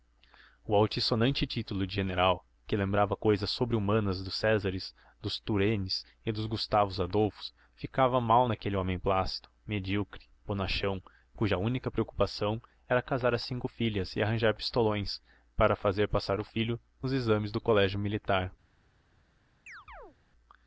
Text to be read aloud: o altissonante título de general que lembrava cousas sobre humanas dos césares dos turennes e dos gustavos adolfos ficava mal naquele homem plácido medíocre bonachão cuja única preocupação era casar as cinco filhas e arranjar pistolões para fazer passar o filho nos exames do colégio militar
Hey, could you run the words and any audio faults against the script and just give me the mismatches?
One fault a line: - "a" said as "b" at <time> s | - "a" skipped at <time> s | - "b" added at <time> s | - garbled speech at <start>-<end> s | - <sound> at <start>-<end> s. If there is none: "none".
- chirp at 19.7-20.2 s